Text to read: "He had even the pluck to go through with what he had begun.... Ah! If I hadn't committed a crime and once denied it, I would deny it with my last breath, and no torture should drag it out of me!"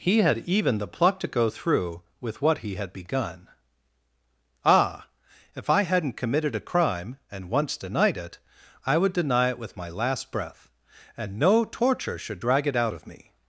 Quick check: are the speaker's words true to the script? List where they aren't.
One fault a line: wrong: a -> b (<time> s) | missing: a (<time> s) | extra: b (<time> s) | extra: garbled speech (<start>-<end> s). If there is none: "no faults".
no faults